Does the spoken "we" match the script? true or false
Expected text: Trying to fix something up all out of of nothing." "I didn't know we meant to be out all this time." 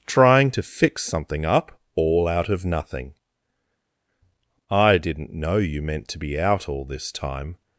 false